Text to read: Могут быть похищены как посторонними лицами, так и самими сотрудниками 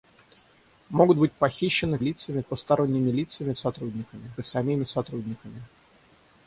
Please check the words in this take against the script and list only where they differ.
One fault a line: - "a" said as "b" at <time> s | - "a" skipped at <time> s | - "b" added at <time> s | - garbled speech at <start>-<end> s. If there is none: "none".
- "как" said as "лицами" at 2.0 s
- "так" said as "сотрудниками" at 3.5 s